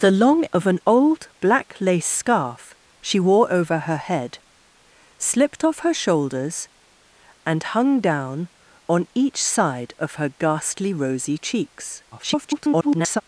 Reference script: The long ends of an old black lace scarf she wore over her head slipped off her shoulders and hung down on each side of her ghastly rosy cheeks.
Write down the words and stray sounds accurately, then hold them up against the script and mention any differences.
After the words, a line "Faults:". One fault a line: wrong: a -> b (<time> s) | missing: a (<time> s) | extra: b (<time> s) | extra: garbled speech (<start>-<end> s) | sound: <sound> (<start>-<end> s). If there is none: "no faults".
The long of an old black lace scarf she wore over her head slipped off her shoulders and hung down on each side of her ghastly rosy cheeks. [garbled]
Faults:
missing: ends (0.5 s)
extra: garbled speech (12.1-13.2 s)